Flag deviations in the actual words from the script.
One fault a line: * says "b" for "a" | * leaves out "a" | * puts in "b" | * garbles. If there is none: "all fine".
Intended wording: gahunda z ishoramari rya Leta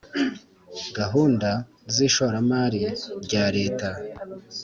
all fine